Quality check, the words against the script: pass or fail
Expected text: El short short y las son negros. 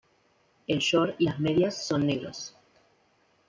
fail